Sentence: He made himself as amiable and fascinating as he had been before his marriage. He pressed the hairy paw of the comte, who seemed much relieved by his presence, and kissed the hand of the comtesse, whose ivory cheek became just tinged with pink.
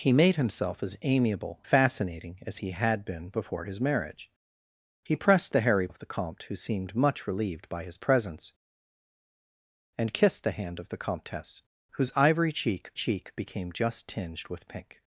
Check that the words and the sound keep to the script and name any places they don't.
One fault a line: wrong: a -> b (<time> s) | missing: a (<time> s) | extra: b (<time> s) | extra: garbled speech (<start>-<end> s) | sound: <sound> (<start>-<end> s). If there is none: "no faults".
missing: and (1.6 s)
missing: paw (5.9 s)
extra: cheek (12.9 s)